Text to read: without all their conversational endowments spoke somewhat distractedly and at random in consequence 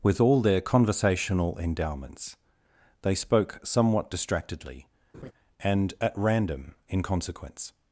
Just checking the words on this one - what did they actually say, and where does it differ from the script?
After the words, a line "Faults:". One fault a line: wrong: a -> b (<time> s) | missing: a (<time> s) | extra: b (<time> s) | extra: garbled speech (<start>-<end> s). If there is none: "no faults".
with all their conversational endowments they spoke somewhat distractedly and at random in consequence
Faults:
wrong: without -> with (0.0 s)
extra: they (3.0 s)